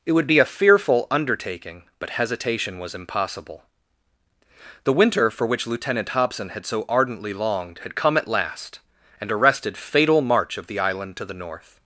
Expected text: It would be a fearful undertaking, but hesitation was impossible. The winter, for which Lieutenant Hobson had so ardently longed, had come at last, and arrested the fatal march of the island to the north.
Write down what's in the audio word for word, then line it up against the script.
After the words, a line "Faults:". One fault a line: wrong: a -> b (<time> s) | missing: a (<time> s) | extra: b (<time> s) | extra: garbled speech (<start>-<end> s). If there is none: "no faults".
It would be a fearful undertaking, but hesitation was impossible. The winter, for which Lieutenant Hobson had so ardently longed, had come at last, and arrested fatal march of the island to the north.
Faults:
missing: the (9.8 s)